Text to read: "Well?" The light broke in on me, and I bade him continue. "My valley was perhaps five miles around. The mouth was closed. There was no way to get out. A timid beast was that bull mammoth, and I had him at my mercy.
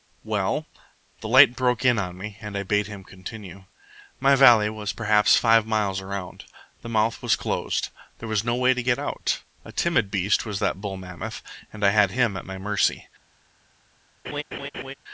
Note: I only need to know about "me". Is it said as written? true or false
true